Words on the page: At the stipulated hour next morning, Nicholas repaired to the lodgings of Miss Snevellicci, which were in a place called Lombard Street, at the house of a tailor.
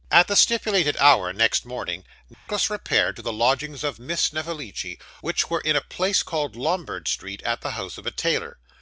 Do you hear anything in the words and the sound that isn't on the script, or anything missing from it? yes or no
yes